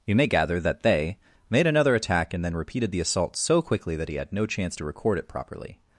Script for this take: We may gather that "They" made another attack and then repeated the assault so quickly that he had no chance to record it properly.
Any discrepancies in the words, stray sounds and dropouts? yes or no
yes